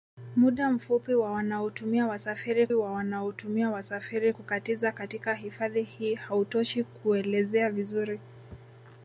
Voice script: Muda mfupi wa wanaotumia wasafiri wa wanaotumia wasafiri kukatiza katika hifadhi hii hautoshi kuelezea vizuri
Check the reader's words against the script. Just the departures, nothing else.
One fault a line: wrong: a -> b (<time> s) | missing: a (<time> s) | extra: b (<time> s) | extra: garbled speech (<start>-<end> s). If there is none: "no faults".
no faults